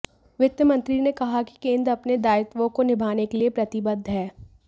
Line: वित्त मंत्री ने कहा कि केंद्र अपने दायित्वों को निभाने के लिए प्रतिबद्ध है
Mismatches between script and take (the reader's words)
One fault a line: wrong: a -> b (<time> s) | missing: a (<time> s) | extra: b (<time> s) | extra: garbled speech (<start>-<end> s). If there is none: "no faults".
no faults